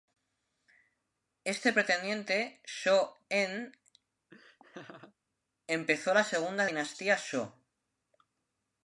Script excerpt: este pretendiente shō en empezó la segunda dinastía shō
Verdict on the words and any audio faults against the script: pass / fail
fail